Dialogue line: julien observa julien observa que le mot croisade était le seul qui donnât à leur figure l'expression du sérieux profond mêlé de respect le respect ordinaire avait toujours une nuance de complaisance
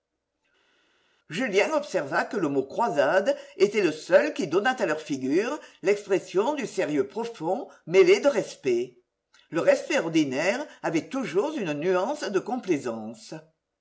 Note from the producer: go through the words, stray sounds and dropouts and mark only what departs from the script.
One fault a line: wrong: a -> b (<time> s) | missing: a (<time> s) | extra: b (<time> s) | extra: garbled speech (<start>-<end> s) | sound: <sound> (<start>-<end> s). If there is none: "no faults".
missing: julien observa (2.2 s)